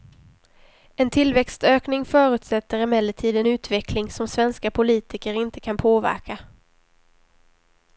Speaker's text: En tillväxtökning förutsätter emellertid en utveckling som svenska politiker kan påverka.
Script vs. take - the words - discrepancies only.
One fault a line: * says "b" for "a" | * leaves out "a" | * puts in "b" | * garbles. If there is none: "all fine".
* puts in "inte"